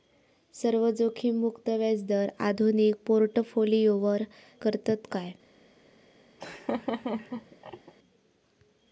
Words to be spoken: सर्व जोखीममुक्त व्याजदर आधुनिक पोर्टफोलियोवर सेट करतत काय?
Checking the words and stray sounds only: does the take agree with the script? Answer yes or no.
no